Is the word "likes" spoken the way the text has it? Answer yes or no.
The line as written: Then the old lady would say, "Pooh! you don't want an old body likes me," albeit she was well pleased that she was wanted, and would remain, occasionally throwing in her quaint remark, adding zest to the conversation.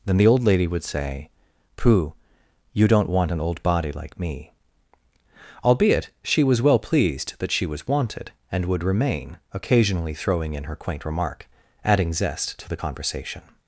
no